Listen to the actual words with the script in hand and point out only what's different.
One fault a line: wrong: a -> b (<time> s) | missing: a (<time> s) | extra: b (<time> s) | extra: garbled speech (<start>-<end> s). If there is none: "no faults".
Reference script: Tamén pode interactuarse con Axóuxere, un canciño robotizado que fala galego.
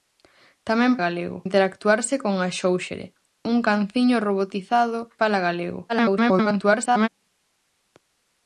wrong: pode -> galego (1.0 s)
missing: que (5.0 s)
extra: garbled speech (5.9-7.1 s)